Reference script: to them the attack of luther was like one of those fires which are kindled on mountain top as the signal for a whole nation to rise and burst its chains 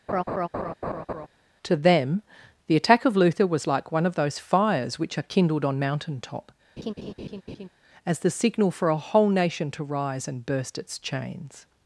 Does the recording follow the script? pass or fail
pass